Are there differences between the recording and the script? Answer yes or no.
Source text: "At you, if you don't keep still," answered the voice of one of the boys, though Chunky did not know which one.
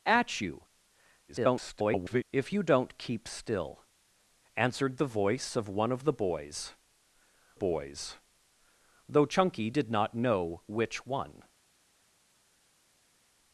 yes